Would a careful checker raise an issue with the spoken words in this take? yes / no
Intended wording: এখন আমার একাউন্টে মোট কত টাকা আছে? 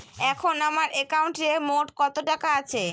no